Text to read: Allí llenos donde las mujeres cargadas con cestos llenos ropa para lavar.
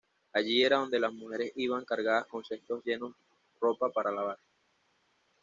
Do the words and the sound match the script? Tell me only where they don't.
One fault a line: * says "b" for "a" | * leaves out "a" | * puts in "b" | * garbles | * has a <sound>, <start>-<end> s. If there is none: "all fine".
* says "era" for "llenos"
* puts in "iban"